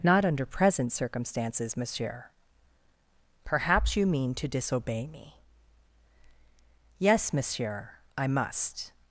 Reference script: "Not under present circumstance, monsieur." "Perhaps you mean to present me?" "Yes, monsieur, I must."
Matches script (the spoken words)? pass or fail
fail